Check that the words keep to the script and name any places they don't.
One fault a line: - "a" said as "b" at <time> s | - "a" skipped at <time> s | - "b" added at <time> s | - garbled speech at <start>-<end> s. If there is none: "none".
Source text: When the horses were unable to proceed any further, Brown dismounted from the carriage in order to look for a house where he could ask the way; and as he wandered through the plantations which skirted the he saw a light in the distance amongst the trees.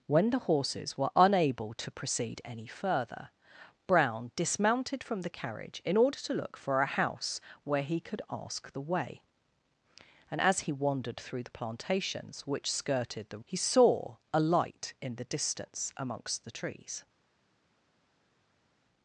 none